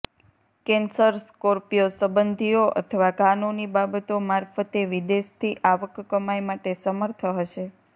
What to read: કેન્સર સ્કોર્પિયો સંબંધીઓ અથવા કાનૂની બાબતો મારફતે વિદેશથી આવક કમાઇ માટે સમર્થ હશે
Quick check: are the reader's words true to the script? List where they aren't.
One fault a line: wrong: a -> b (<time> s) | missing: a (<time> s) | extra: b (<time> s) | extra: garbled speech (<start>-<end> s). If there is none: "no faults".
no faults